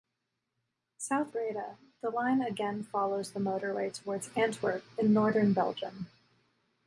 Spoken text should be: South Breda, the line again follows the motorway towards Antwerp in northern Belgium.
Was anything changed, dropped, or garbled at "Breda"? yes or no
no